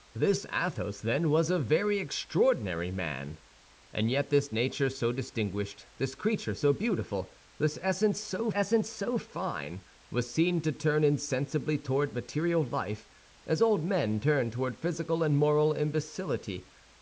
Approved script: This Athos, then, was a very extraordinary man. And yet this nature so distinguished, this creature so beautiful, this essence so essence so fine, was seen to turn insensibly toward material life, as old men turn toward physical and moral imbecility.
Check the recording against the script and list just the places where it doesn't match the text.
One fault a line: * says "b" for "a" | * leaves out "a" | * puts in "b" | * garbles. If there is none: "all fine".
all fine